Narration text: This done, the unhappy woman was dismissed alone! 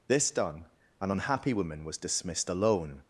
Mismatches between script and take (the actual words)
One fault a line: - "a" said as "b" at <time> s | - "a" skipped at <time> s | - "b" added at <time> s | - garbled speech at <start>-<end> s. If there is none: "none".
- "the" said as "an" at 1.0 s